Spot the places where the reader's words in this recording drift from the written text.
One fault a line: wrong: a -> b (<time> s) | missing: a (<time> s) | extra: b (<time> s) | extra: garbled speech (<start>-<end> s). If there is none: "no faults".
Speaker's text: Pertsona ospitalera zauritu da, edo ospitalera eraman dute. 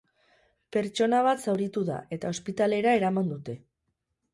wrong: ospitalera -> bat (1.3 s)
wrong: edo -> eta (2.2 s)